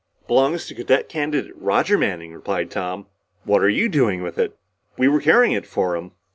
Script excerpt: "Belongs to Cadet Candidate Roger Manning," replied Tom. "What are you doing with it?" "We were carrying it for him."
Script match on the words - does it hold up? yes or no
yes